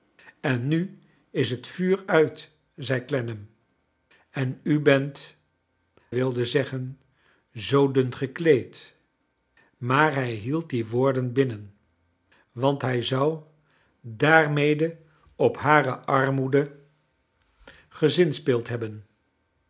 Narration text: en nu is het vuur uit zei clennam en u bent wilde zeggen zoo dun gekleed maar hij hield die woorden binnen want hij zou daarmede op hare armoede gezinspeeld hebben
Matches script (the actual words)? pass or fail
pass